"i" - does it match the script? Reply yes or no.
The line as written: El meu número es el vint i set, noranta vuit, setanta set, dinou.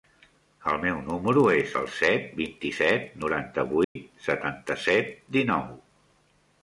yes